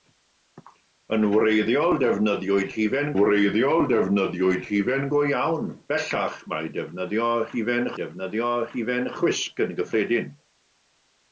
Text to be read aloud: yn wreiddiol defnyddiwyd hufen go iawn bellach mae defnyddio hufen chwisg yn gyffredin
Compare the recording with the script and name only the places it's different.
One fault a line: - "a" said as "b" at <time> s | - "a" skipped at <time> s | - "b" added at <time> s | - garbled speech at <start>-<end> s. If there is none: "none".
- "wreiddiol defnyddiwyd hufen" added at 3.2 s
- "defnyddio hufen" added at 8.0 s